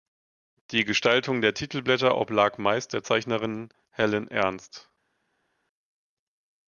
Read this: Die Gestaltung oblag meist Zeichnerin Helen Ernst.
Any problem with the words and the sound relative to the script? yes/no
yes